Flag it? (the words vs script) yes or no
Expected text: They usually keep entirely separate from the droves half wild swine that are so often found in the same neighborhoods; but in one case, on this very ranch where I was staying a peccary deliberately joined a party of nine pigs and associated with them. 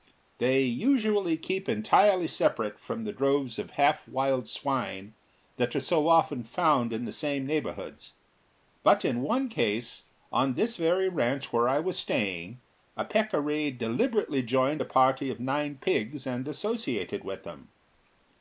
yes